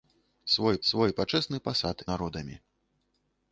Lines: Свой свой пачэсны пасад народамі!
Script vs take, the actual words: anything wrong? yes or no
no